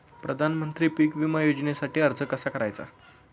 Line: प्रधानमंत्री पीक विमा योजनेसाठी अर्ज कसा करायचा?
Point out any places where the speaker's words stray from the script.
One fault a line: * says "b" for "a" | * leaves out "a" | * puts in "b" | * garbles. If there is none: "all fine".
all fine